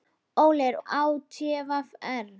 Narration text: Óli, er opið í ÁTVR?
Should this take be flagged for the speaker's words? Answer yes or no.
yes